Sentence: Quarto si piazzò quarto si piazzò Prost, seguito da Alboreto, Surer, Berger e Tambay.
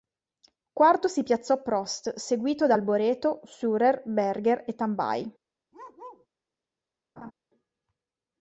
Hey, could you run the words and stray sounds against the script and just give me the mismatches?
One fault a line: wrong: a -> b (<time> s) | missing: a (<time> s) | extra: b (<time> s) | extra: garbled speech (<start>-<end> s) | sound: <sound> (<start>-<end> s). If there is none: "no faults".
missing: quarto si piazzò (1.6 s)
sound: bark (5.7-6.3 s)
sound: laugh (7.2-7.3 s)